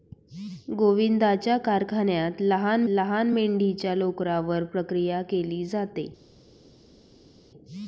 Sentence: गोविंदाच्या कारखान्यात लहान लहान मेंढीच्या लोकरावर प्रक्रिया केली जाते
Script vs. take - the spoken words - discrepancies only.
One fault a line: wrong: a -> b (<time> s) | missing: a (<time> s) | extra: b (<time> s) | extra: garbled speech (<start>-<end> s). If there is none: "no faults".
no faults